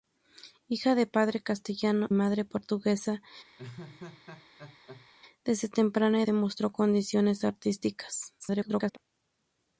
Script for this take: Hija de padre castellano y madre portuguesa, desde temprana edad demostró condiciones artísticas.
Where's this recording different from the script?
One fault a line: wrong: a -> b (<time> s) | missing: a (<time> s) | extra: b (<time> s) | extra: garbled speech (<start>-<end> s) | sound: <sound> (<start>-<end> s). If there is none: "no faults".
missing: y (2.1 s)
sound: laugh (3.6-5.1 s)
missing: edad (6.2 s)
extra: garbled speech (8.4-9.0 s)